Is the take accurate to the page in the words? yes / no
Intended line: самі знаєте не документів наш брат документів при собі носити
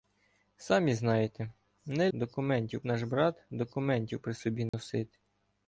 yes